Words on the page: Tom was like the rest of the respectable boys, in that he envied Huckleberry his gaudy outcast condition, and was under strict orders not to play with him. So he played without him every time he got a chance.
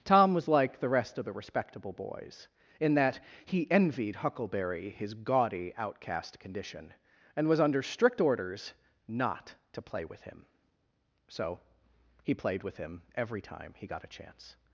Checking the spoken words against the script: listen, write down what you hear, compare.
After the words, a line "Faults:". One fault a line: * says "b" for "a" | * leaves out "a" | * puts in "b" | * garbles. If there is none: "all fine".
Tom was like the rest of the respectable boys, in that he envied Huckleberry his gaudy outcast condition, and was under strict orders not to play with him. So he played with him every time he got a chance.
Faults:
* says "with" for "without"